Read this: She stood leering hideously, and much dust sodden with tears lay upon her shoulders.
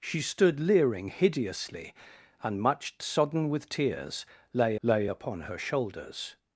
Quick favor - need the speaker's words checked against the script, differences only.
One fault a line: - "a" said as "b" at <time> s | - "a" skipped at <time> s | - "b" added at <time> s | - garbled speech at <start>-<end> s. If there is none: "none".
- "dust" skipped at 3.0 s
- "lay" added at 4.8 s